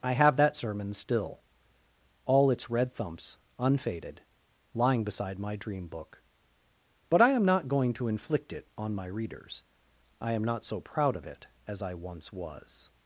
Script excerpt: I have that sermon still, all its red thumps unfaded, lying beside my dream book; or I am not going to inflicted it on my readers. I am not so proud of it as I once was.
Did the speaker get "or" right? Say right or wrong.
wrong